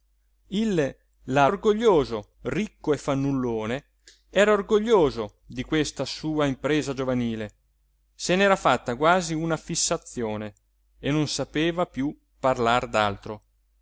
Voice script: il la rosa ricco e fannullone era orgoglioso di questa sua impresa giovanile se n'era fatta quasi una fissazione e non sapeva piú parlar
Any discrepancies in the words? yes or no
yes